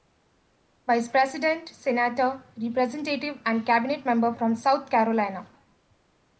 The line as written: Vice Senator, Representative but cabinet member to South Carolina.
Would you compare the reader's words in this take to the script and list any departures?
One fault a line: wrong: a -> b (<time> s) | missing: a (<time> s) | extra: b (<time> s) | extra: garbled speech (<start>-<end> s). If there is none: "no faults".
extra: President (1.1 s)
wrong: but -> and (3.5 s)
wrong: to -> from (4.3 s)